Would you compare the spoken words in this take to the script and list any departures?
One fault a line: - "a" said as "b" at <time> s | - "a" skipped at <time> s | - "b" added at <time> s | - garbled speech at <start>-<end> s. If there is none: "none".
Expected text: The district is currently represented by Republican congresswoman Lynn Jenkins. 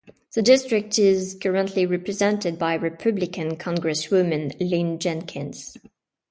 none